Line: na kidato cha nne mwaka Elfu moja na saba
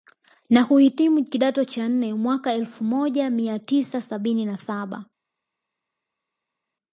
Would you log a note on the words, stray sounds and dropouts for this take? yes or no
yes